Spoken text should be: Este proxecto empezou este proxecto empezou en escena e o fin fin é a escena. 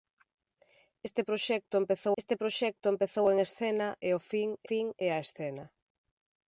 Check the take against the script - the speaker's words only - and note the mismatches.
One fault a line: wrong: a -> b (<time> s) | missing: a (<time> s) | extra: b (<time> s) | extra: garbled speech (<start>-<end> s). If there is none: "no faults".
no faults